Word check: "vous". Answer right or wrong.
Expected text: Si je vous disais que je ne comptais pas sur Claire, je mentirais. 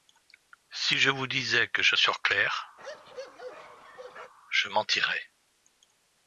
right